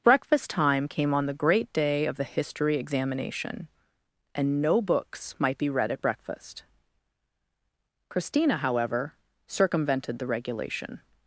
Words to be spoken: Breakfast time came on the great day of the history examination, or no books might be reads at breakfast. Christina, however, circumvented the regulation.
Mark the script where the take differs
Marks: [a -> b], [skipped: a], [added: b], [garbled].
Breakfast time came on the great day of the history examination, [or -> and] no books might be [reads -> read] at breakfast. Christina, however, circumvented the regulation.